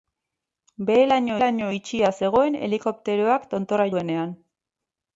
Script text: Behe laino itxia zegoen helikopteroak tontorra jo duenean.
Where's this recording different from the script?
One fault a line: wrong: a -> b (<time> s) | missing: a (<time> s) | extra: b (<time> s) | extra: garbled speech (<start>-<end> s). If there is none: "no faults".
extra: laino (1.4 s)
missing: jo (3.9 s)